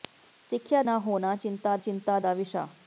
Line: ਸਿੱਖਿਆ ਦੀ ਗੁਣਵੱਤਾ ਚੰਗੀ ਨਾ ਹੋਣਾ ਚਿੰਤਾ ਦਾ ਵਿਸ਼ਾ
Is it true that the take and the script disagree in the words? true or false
true